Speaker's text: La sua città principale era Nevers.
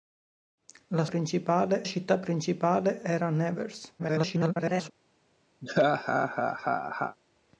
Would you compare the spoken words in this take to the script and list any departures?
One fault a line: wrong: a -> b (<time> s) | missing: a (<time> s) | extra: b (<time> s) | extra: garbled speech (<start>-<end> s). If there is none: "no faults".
wrong: sua -> principale (1.1 s)
extra: garbled speech (4.0-4.9 s)